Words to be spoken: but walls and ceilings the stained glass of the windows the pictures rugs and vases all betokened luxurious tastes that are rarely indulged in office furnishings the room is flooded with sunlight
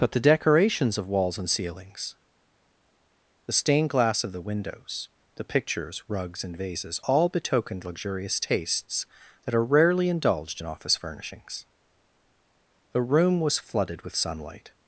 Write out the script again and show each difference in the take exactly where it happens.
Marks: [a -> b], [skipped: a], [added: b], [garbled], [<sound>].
but [added: the decorations of] walls and ceilings the stained glass of the windows the pictures rugs and vases all betokened luxurious tastes that are rarely indulged in office furnishings the room [is -> was] flooded with sunlight